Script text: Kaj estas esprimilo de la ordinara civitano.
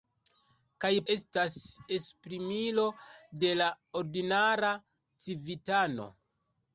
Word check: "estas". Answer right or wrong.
right